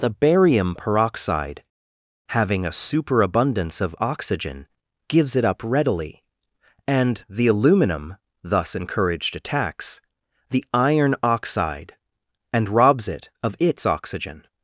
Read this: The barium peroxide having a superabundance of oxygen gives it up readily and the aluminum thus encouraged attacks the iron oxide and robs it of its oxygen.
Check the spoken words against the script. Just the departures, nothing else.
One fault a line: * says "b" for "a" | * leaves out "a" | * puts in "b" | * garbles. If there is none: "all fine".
all fine